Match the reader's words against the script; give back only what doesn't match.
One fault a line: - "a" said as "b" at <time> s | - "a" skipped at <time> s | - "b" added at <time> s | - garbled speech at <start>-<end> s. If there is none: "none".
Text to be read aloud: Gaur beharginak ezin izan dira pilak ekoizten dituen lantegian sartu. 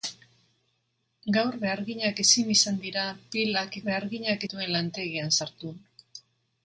- "ekoizten" said as "beharginak" at 3.9 s